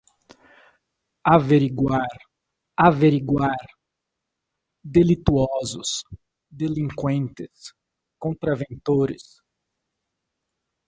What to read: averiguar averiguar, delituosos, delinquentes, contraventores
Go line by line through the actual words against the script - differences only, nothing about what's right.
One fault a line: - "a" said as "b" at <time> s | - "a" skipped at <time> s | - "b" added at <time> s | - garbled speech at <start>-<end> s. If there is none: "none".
none